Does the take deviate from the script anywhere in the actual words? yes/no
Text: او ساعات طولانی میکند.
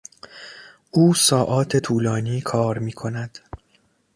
yes